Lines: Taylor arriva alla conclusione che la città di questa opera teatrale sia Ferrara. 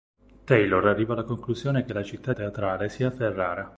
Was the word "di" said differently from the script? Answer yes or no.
yes